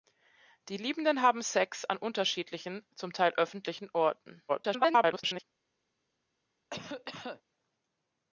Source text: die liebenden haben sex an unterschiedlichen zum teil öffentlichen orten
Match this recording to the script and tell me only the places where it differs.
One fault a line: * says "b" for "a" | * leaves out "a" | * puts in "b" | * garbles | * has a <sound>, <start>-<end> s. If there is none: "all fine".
* garbles
* has a cough, 6.7-7.4 s